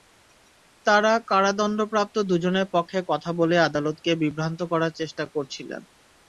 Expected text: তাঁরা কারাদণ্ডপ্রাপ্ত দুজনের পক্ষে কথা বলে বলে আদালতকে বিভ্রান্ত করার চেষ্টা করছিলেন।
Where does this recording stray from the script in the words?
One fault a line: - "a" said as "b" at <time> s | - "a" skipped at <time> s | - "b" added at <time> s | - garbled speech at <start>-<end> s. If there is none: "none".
- "বলে" skipped at 3.5 s